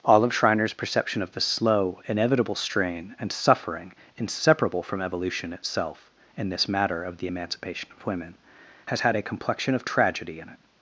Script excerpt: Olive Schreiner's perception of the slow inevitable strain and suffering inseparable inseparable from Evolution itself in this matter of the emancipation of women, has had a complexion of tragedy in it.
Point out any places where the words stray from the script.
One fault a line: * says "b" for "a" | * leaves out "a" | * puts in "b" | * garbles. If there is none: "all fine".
* leaves out "inseparable"